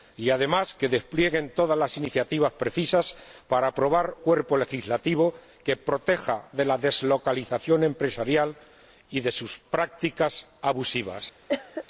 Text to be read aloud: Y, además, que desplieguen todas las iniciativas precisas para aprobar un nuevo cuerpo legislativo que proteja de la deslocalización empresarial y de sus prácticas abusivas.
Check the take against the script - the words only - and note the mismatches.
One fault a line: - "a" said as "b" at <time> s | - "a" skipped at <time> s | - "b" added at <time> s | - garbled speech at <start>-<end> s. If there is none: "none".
- "un nuevo" skipped at 4.2 s